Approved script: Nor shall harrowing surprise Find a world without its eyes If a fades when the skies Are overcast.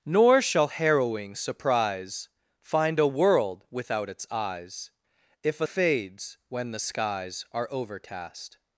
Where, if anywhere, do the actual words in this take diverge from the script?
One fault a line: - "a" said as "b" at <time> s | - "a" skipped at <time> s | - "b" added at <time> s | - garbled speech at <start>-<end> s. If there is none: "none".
none